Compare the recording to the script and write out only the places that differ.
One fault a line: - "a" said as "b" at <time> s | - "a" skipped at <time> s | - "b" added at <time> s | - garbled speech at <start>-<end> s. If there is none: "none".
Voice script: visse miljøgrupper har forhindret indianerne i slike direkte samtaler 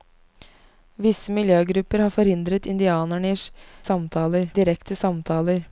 - "slike" said as "samtaler" at 3.8 s